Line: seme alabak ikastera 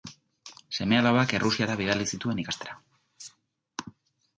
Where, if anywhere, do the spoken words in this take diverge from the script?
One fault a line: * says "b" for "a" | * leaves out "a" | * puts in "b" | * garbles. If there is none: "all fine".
* puts in "errusiara bidali zituen"